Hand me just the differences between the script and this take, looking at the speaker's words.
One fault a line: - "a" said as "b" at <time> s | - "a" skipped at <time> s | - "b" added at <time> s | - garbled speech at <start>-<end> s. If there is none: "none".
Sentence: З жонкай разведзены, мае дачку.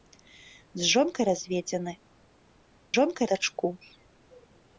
- "мае" said as "жонкай" at 2.9 s